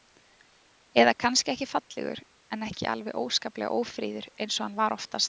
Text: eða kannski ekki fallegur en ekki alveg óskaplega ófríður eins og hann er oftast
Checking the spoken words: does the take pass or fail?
fail